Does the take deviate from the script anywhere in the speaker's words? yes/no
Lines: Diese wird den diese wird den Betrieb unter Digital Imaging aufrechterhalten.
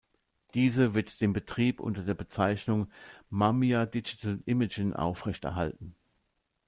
yes